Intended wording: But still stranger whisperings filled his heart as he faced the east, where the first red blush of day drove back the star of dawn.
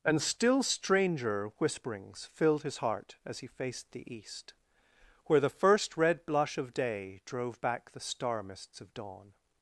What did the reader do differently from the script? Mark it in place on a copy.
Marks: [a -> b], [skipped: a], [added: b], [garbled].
[But -> And] still stranger whisperings filled his heart as he faced the east, where the first red blush of day drove back the star [added: mists] of dawn.